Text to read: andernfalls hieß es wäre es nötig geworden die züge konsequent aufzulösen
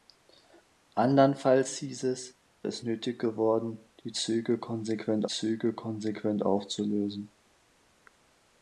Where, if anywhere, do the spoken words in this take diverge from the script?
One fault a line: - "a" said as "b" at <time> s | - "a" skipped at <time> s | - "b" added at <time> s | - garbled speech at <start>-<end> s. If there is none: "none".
- "wäre" skipped at 2.4 s
- "züge konsequent" added at 5.3 s